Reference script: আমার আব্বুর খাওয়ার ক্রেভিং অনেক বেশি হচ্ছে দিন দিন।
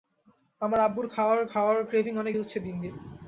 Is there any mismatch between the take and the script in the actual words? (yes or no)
yes